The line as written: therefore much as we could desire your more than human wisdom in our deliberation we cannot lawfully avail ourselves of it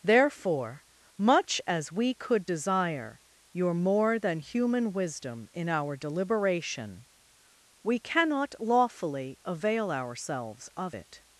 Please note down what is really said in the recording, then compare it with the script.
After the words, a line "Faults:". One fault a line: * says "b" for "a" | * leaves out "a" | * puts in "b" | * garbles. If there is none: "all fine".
therefore much as we could desire your more than human wisdom in our deliberation we cannot lawfully avail ourselves of it
Faults:
all fine